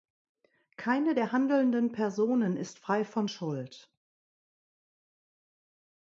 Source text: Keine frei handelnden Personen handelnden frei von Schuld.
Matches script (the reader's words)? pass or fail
fail